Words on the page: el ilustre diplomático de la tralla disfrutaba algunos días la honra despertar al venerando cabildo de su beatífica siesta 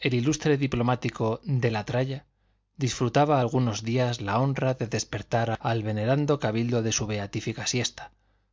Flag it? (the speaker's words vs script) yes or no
yes